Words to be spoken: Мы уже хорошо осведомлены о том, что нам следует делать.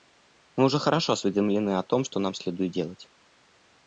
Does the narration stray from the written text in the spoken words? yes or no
no